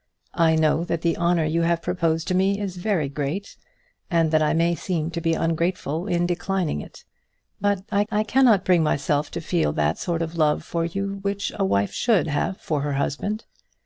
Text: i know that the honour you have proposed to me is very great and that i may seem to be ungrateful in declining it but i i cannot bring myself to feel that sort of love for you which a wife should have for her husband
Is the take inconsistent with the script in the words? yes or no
no